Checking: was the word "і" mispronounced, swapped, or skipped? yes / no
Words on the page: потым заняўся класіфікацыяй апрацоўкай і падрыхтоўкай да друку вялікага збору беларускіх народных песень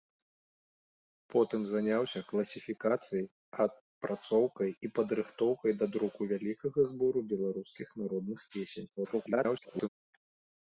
no